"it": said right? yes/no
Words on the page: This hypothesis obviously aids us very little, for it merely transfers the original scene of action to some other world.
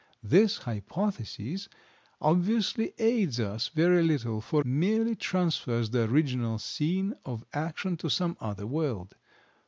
no